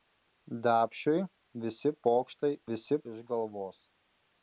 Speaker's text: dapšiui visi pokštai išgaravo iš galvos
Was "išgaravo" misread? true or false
true